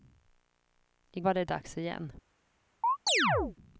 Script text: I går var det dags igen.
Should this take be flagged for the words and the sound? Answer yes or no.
yes